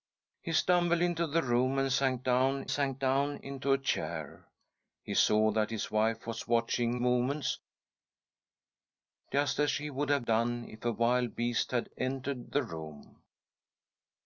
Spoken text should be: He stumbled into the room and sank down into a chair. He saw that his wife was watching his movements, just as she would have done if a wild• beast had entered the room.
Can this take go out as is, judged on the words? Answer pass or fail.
fail